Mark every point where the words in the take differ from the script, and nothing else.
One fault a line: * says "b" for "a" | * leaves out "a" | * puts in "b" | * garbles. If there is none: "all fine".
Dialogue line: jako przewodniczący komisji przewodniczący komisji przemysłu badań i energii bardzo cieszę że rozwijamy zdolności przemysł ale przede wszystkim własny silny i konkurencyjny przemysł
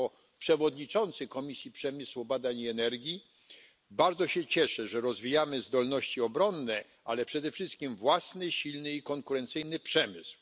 * leaves out "przewodniczący komisji"
* puts in "się"
* says "obronne" for "przemysł"